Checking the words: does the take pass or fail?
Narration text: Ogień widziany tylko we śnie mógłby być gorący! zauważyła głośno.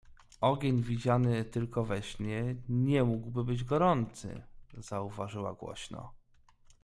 fail